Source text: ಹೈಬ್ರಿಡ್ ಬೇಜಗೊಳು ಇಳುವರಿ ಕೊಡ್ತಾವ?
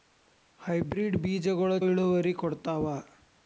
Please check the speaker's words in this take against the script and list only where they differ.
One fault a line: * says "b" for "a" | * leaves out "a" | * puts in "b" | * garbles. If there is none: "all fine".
all fine